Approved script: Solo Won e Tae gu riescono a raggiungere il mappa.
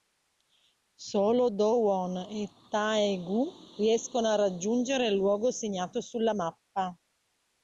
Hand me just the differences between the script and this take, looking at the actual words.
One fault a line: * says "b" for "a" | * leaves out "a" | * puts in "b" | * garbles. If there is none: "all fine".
* puts in "Do"
* puts in "luogo segnato sulla"